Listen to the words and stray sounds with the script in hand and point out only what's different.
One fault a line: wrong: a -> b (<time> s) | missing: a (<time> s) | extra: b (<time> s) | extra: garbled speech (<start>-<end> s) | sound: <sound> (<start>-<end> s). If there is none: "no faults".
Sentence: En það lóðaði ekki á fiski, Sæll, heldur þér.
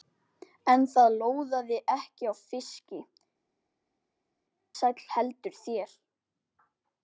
no faults